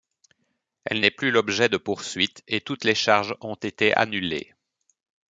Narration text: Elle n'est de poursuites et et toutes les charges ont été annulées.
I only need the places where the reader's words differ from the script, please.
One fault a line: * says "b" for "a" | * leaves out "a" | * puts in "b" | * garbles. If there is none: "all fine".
* puts in "plus l'objet"
* leaves out "et"